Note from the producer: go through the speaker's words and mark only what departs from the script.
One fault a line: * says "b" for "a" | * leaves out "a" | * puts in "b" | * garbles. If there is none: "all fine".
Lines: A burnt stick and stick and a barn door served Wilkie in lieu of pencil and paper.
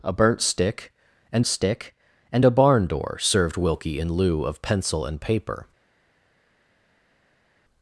all fine